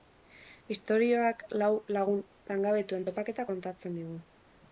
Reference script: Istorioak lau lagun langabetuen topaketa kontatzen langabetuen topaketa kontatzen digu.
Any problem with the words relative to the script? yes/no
yes